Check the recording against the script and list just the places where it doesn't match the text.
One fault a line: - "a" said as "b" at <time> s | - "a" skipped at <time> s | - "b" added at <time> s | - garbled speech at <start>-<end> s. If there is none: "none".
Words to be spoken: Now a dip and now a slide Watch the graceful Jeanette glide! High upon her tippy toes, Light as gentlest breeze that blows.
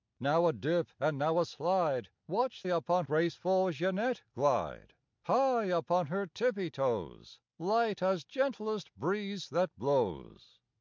- "the" said as "upon" at 2.6 s